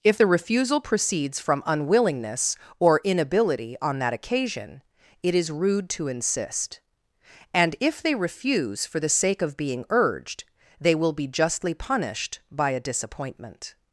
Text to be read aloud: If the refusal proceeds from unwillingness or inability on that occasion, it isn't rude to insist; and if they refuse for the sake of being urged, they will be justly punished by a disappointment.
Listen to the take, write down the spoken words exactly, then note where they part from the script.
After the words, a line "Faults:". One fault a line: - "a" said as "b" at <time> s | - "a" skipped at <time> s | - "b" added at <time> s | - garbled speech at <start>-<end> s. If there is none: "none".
If the refusal proceeds from unwillingness or inability on that occasion, it is rude to insist; and if they refuse for the sake of being urged, they will be justly punished by a disappointment.
Faults:
- "isn't" said as "is" at 5.3 s